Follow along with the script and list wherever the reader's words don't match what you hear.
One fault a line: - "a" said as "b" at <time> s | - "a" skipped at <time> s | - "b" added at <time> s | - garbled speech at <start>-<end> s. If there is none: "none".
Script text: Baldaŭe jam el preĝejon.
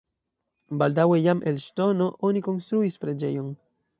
- "ŝtono oni konstruis" added at 1.7 s